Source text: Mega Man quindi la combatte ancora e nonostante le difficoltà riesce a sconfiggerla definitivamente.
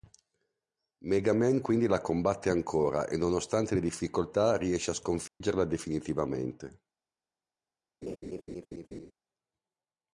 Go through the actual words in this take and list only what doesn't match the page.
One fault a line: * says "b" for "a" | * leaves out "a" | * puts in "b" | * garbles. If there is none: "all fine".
all fine